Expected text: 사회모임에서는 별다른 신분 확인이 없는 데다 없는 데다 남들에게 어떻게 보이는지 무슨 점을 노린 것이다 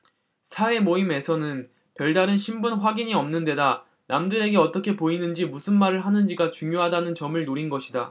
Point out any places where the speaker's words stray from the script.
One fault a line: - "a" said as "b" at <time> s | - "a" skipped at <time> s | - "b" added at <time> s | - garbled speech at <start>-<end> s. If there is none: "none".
- "없는 데다" skipped at 3.9 s
- "말을 하는지가 중요하다는" added at 5.8 s